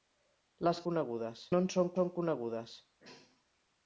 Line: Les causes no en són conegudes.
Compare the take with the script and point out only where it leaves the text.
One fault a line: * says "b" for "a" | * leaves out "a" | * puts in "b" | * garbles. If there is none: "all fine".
* says "conegudes" for "causes"
* puts in "són"